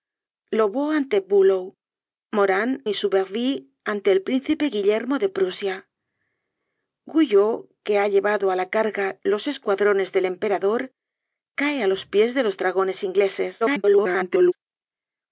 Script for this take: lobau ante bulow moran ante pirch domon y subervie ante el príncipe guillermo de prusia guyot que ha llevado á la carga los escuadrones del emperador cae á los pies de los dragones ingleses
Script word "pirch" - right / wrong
wrong